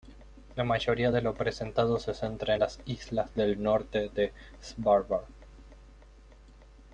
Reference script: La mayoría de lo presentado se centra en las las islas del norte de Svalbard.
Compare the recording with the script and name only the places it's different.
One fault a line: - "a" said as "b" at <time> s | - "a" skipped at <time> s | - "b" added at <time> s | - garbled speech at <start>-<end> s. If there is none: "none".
- "las" skipped at 2.8 s